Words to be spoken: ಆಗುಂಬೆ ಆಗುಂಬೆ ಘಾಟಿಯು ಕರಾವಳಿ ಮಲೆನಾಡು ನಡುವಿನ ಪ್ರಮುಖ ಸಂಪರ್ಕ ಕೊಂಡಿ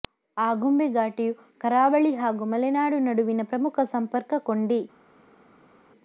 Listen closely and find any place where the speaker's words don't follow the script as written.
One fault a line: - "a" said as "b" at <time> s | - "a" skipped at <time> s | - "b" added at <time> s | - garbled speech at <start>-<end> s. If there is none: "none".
- "ಆಗುಂಬೆ" skipped at 0.9 s
- "ಹಾಗೂ" added at 2.1 s